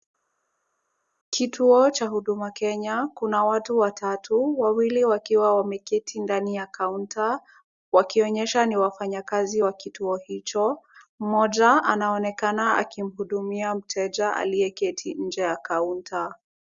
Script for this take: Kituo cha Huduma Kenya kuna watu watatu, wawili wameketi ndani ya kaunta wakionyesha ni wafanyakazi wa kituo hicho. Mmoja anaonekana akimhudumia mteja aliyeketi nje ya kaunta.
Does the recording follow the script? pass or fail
fail